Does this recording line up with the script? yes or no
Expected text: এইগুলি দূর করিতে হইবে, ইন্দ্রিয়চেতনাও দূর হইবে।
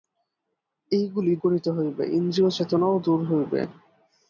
no